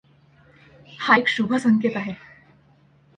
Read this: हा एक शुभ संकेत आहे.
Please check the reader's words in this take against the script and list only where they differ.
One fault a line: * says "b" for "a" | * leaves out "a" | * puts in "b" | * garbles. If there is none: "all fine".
all fine